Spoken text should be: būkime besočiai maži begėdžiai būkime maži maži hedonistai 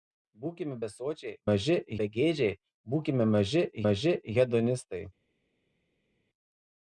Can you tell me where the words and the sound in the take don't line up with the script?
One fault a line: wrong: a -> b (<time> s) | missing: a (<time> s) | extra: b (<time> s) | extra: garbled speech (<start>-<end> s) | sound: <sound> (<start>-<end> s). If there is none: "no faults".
no faults